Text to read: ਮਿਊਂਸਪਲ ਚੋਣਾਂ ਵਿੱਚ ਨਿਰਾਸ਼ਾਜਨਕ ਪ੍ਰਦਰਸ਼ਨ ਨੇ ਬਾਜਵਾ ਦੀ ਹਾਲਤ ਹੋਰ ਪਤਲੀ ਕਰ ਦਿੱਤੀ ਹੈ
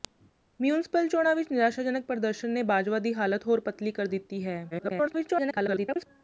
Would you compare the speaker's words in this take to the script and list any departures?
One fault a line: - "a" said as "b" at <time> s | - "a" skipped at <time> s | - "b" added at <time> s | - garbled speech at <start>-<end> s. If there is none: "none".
- garbled speech at 4.7-6.1 s